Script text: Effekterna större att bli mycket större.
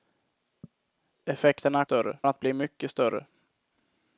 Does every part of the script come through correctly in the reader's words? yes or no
yes